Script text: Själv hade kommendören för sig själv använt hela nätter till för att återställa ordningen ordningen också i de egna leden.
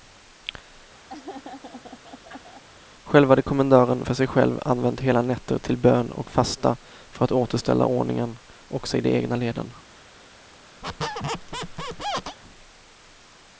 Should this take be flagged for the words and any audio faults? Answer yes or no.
yes